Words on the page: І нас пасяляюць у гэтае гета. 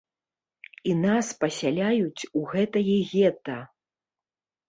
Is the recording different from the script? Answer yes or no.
no